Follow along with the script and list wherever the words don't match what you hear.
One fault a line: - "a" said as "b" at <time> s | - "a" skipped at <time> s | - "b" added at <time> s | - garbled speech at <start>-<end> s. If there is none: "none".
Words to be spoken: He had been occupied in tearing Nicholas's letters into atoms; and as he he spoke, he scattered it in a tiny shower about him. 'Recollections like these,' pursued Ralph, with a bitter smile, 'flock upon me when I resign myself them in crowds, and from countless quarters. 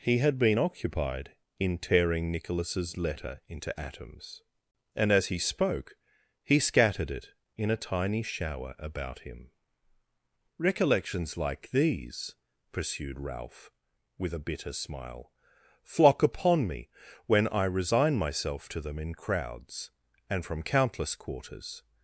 - "letters" said as "letter" at 3.0 s
- "he" skipped at 5.4 s
- "to" added at 18.7 s